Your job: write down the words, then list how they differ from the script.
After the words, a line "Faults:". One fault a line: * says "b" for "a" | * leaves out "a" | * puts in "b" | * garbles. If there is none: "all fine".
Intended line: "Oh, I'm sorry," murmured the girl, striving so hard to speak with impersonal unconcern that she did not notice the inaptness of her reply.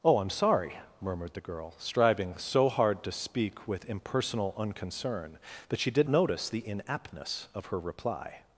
"Oh, I'm sorry," murmured the girl, striving so hard to speak with impersonal unconcern that she did notice the inaptness of her reply.
Faults:
* leaves out "not"